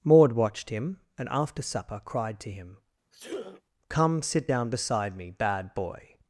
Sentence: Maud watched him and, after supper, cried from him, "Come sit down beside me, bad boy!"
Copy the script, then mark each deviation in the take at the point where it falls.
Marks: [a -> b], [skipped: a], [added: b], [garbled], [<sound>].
Maud watched him and, after supper, cried [from -> to] him, [sneeze] "Come sit down beside me, bad boy!"